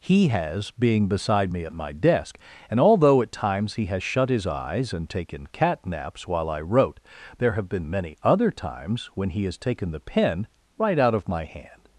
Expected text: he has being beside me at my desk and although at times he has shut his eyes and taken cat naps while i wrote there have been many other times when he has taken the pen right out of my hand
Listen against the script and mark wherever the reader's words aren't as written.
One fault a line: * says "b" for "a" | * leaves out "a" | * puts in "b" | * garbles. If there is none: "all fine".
all fine